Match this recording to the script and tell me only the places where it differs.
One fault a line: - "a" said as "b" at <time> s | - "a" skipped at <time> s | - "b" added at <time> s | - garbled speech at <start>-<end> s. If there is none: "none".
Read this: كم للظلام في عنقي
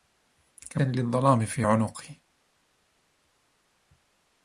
none